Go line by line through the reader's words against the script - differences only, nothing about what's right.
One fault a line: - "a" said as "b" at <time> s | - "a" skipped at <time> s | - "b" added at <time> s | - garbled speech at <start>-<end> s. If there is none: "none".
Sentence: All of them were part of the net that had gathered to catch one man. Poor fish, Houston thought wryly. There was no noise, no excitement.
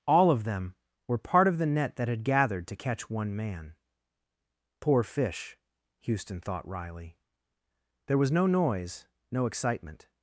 none